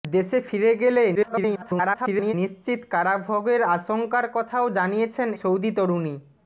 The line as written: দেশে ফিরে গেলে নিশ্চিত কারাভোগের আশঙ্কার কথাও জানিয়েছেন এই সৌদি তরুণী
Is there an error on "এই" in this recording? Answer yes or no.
yes